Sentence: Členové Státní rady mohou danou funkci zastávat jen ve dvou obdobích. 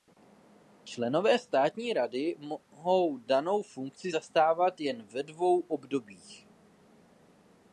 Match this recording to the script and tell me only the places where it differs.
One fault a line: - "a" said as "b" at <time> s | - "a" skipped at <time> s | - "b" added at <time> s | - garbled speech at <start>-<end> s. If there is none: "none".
none